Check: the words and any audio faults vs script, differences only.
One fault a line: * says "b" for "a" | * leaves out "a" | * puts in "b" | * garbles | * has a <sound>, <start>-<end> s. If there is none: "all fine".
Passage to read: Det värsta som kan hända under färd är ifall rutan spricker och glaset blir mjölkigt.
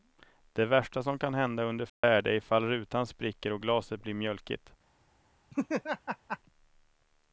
* has a dropout, 1.9-2.0 s
* has a laugh, 5.5-6.4 s